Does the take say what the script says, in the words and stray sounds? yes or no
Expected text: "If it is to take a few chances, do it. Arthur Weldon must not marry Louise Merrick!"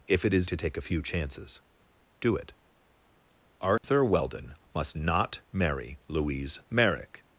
no